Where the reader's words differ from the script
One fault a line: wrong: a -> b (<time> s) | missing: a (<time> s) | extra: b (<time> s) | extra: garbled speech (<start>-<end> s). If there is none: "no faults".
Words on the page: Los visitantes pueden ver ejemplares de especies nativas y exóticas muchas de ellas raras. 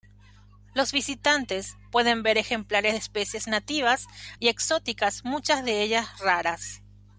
no faults